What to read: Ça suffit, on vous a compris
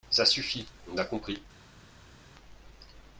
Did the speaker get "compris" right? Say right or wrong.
right